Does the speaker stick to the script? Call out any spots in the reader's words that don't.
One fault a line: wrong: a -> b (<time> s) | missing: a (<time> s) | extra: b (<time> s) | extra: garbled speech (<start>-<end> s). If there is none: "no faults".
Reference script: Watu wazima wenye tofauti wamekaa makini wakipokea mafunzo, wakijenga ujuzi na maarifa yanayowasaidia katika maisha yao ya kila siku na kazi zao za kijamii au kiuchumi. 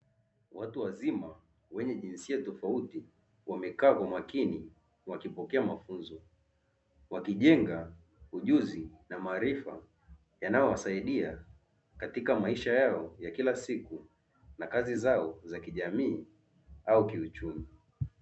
extra: jinsia (1.9 s)
extra: kwa (3.9 s)